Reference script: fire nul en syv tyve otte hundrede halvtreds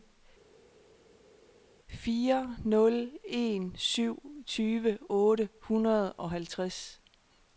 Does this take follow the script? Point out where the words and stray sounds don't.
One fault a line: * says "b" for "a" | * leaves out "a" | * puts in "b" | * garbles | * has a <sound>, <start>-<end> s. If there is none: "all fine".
* puts in "og"